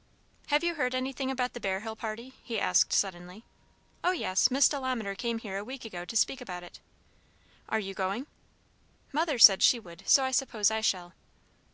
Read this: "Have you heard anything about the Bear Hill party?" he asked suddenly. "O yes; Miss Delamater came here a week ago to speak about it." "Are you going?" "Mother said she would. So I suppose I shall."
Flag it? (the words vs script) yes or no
no